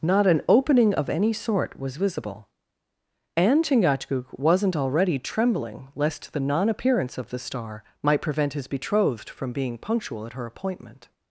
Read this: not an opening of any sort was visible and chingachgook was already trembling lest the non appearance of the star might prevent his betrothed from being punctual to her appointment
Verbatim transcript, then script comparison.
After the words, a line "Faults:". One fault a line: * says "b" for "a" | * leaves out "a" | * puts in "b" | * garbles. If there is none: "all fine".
not an opening of any sort was visible and chingachgook wasn't already trembling lest the non appearance of the star might prevent his betrothed from being punctual at her appointment
Faults:
* says "wasn't" for "was"
* says "at" for "to"